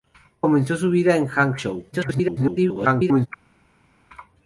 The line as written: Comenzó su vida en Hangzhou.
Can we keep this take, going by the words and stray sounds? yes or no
no